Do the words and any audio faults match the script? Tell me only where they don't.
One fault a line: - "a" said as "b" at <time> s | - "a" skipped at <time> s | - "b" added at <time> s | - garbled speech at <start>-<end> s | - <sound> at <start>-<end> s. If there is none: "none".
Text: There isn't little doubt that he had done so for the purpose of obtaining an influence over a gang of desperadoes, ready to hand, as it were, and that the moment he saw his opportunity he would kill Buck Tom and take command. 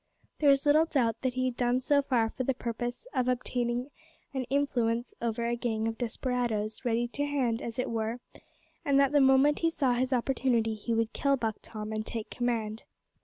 - "isn't" said as "is" at 0.5 s